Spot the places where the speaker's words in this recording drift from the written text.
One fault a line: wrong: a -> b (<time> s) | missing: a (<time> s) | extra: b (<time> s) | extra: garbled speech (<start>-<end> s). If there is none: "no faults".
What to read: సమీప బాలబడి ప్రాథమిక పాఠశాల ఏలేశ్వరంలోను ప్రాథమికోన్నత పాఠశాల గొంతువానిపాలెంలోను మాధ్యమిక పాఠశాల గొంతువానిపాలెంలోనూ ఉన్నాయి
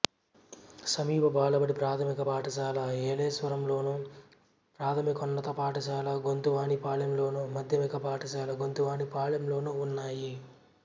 no faults